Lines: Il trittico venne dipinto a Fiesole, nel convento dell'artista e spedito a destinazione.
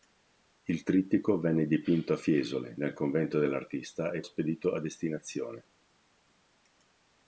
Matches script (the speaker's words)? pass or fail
pass